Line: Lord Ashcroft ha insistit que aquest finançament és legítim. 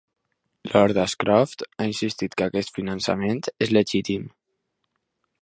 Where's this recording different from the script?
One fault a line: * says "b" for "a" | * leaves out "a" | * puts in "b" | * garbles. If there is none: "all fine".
all fine